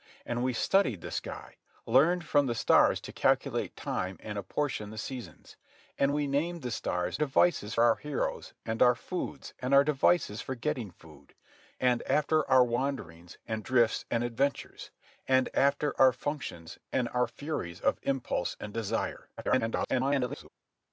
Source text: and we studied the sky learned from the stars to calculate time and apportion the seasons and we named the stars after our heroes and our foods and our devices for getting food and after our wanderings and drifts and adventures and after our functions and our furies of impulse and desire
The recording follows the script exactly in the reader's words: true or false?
false